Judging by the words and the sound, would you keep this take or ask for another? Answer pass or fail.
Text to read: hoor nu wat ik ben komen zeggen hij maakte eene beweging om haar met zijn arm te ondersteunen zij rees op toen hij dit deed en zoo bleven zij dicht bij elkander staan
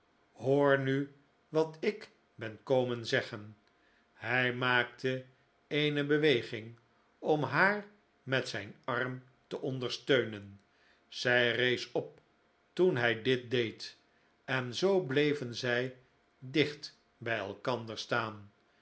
pass